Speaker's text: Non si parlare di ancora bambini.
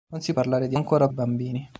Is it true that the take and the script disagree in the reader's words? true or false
false